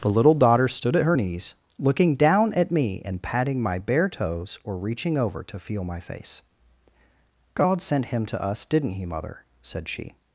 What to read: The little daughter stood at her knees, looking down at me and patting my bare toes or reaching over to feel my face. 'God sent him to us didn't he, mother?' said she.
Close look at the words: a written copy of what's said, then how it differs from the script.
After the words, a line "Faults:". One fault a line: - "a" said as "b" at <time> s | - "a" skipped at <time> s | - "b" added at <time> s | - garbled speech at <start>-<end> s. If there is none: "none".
The little daughter stood at her knees, looking down at me and patting my bare toes or reaching over to feel my face. 'God sent him to us didn't he, mother?' said she.
Faults:
none